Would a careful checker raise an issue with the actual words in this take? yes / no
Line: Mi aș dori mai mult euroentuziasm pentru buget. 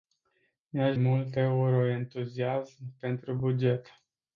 yes